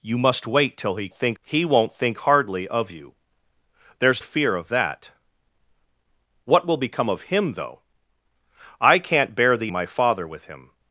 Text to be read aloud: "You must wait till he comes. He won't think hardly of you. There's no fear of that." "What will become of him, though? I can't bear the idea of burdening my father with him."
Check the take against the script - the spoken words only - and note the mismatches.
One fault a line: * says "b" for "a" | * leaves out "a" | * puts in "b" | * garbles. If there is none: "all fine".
* says "think" for "comes"
* leaves out "no"
* leaves out "idea of burdening"